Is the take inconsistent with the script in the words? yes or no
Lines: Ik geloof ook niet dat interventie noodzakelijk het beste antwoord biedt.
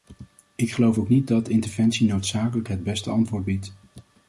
no